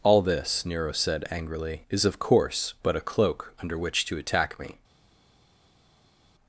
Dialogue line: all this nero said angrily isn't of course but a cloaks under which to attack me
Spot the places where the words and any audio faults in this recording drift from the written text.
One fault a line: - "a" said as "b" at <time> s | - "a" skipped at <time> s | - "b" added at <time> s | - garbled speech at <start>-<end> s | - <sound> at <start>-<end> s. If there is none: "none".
- "isn't" said as "is" at 1.9 s
- "cloaks" said as "cloak" at 3.0 s